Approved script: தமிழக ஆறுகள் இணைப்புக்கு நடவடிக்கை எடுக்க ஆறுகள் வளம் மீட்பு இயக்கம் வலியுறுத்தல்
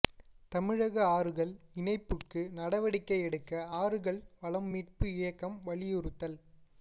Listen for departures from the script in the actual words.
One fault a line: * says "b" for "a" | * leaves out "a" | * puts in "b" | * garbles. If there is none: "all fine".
all fine